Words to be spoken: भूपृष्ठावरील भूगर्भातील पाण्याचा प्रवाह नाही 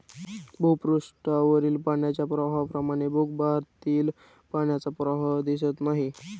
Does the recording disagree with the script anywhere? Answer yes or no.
yes